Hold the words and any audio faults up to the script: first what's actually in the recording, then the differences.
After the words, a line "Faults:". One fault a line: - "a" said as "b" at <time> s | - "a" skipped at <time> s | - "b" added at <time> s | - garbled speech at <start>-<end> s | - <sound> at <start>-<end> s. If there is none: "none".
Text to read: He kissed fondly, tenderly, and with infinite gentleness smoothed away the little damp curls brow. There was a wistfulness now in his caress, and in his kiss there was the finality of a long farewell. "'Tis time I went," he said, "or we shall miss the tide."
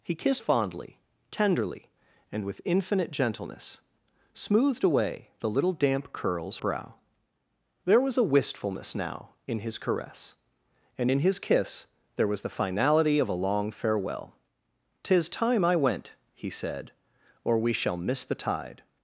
He kissed fondly, tenderly, and with infinite gentleness smoothed away the little damp curls brow. There was a wistfulness now in his caress, and in his kiss there was the finality of a long farewell. "'Tis time I went," he said, "or we shall miss the tide."
Faults:
none